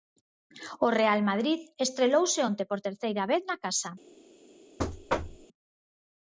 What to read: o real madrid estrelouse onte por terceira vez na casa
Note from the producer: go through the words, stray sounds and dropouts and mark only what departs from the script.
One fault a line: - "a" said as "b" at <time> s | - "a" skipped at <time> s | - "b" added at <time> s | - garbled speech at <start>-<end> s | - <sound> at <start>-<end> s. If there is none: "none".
- thud at 4.8-5.5 s